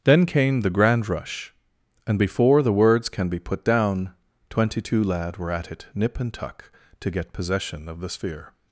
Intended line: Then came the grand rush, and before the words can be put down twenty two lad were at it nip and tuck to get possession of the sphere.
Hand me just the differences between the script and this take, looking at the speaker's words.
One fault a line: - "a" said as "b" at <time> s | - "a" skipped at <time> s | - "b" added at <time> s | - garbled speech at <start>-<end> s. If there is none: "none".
none